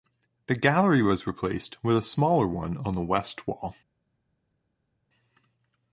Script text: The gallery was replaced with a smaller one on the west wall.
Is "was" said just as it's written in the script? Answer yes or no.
yes